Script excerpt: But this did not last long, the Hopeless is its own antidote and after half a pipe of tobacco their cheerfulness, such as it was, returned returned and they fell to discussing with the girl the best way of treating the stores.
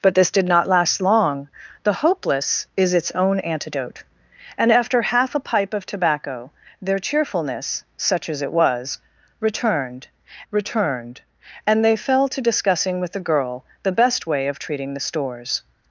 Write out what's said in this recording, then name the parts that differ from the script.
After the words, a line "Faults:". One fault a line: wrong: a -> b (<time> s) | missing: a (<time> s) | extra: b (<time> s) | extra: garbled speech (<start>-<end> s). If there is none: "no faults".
But this did not last long, the Hopeless is its own antidote and after half a pipe of tobacco their cheerfulness, such as it was, returned returned and they fell to discussing with the girl the best way of treating the stores.
Faults:
no faults